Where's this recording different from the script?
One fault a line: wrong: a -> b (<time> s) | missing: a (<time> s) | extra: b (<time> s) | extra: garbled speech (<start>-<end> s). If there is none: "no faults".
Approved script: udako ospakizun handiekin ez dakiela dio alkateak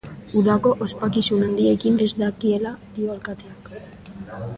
no faults